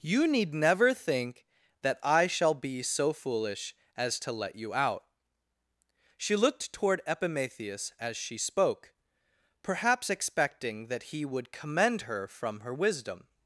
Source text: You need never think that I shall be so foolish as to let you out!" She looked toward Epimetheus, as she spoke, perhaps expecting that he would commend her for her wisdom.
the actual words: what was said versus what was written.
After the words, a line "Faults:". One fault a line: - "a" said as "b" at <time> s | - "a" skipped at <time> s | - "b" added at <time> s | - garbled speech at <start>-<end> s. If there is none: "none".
You need never think that I shall be so foolish as to let you out!" She looked toward Epimetheus, as she spoke, perhaps expecting that he would commend her from her wisdom.
Faults:
- "for" said as "from" at 12.3 s